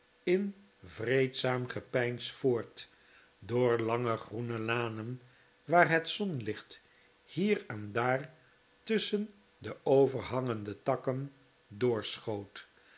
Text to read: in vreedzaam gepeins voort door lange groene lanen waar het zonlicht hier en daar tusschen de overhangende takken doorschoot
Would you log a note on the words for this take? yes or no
no